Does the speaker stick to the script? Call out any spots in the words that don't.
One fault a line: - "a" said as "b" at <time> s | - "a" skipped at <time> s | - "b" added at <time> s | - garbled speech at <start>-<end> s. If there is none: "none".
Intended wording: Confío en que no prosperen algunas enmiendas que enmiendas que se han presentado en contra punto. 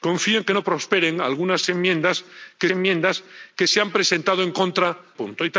none